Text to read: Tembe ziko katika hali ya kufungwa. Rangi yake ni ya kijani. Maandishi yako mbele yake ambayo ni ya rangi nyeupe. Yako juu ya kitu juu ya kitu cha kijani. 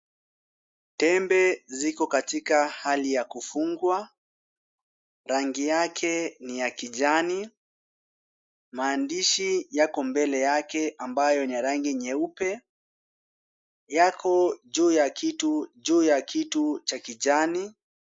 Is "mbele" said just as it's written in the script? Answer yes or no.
yes